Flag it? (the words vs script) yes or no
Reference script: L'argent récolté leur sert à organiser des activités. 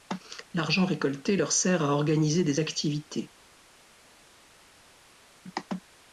no